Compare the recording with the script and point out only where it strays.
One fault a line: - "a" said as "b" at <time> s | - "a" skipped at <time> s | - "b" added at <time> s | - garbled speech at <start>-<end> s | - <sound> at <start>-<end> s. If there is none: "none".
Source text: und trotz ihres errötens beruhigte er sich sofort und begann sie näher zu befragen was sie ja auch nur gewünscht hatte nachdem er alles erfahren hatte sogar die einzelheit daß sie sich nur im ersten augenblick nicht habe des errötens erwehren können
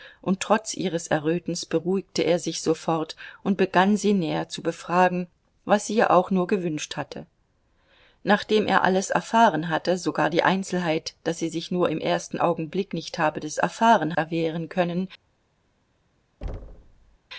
- "errötens" said as "erfahren" at 13.6 s
- thud at 16.4-17.2 s